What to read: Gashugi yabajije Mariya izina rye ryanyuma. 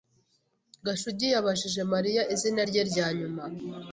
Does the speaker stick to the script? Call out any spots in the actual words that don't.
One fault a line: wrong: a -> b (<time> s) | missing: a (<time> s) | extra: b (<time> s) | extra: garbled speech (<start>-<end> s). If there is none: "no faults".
no faults